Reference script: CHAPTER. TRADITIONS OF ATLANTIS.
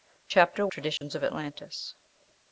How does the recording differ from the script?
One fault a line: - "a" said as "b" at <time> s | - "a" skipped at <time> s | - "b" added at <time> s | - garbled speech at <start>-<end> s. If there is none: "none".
none